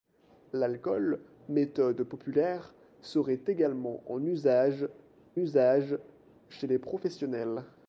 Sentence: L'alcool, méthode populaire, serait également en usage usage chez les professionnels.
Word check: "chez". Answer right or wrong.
right